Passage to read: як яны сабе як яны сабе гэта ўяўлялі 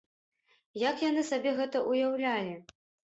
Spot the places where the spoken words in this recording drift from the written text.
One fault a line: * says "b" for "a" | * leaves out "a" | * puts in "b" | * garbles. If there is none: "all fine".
* leaves out "як яны сабе"